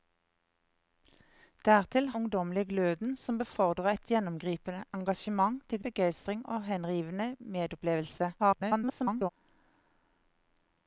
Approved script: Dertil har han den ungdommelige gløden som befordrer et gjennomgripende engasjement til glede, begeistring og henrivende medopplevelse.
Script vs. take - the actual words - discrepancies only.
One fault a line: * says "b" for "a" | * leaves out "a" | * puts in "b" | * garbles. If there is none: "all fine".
* leaves out "har han den"
* leaves out "glede"
* garbles